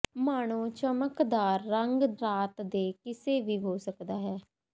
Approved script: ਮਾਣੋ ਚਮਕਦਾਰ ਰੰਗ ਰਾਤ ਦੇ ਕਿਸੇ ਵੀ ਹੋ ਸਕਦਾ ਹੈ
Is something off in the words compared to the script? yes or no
no